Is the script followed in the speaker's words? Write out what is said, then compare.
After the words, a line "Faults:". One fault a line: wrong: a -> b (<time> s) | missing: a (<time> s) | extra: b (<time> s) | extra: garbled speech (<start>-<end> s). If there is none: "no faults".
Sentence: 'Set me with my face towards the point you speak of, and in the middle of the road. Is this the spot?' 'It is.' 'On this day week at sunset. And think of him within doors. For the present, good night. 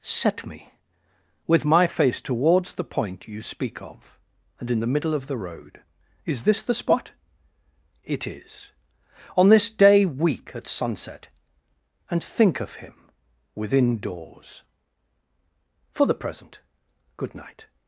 'Set me with my face towards the point you speak of, and in the middle of the road. Is this the spot?' 'It is.' 'On this day week at sunset. And think of him within doors. For the present, good night.
Faults:
no faults